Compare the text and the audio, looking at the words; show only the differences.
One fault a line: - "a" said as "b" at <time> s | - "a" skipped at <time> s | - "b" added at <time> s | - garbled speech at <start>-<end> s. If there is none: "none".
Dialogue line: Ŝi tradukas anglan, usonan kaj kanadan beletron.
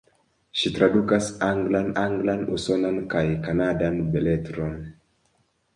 - "anglan" added at 2.0 s